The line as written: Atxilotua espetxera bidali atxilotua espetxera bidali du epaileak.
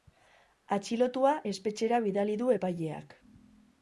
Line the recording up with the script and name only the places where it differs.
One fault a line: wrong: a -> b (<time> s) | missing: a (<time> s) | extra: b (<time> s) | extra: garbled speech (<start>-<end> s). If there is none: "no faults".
missing: atxilotua espetxera bidali (2.4 s)